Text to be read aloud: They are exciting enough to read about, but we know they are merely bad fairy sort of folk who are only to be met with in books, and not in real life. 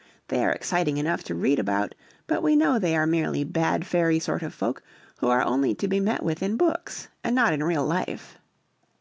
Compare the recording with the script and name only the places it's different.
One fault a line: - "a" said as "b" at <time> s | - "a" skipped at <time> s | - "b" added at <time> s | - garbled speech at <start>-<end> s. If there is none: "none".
none